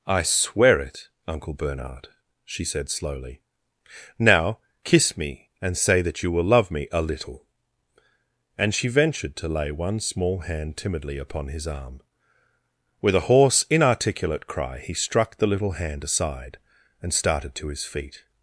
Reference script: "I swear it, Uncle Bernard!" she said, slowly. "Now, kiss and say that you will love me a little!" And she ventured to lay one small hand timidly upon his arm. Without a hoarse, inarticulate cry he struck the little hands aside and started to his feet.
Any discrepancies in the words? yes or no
yes